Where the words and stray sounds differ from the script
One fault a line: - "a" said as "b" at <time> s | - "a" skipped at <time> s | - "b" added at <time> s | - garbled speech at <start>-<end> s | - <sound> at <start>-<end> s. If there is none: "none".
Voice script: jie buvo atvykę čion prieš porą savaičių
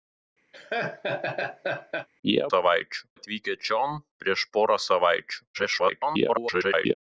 - laugh at 0.5-2.1 s
- "buvo" said as "savaičių" at 2.5 s
- garbled speech at 5.5-6.9 s